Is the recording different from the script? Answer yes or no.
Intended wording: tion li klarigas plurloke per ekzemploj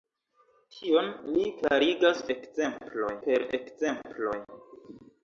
yes